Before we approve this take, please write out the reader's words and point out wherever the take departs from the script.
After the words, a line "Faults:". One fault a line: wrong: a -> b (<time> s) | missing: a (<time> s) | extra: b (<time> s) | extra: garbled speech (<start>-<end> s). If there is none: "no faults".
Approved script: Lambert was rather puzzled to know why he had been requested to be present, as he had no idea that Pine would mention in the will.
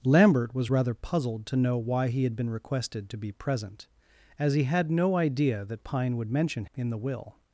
Lambert was rather puzzled to know why he had been requested to be present, as he had no idea that Pine would mention in the will.
Faults:
no faults